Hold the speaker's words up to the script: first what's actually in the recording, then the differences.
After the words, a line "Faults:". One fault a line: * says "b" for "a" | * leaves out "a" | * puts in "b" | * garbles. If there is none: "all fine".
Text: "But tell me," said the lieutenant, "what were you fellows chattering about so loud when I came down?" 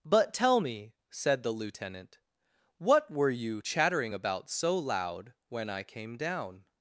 "But tell me," said the lieutenant, "what were you chattering about so loud when I came down?"
Faults:
* leaves out "fellows"